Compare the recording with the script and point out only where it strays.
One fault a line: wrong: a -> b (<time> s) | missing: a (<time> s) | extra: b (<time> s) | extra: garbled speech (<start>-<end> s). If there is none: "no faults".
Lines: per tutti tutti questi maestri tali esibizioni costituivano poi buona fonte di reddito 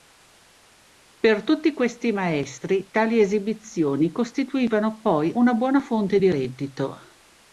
missing: tutti (1.7 s)
extra: una (5.3 s)